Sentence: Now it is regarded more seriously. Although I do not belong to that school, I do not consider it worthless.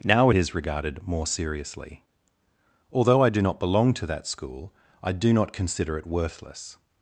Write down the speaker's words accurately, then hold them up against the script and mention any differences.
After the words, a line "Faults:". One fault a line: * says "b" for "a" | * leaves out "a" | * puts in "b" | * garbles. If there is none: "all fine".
Now it is regarded more seriously. Although I do not belong to that school, I do not consider it worthless.
Faults:
all fine